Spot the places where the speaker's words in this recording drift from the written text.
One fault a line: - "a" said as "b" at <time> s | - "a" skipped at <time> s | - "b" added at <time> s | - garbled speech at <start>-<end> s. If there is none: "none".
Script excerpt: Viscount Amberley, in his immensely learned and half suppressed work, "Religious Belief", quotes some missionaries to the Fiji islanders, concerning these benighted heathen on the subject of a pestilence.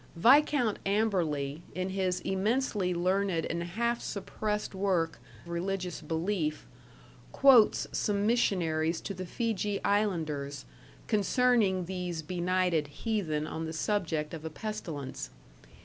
none